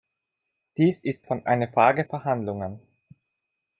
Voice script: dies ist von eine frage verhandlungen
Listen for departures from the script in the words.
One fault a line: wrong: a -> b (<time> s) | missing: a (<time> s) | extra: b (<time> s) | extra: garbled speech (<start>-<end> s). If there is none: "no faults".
no faults